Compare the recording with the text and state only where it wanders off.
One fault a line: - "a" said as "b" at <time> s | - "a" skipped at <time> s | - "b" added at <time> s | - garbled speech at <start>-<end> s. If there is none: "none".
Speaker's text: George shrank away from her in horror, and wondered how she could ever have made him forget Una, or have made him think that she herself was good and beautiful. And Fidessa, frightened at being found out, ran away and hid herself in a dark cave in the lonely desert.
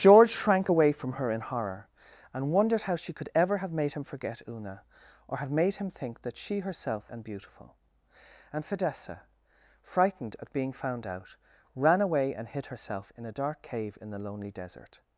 - "was good" skipped at 7.1 s